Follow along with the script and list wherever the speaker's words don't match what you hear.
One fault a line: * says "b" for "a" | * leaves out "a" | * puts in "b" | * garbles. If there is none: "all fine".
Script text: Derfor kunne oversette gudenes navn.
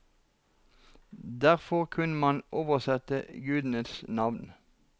* puts in "man"